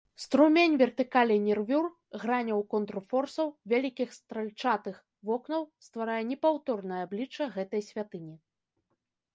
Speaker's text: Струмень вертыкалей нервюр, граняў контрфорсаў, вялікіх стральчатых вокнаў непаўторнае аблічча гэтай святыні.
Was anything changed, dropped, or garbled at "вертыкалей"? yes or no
no